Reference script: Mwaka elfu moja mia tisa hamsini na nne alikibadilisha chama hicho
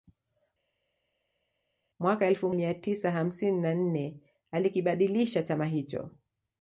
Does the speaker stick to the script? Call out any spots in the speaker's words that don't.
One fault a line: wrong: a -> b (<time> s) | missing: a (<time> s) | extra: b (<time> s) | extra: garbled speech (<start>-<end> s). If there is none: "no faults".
missing: moja (2.5 s)